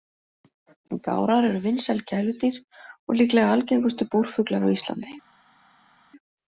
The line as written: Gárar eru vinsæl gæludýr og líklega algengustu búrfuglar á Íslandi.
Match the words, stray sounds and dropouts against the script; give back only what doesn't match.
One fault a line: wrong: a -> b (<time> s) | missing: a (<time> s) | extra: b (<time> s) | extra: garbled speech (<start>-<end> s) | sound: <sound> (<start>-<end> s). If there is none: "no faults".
no faults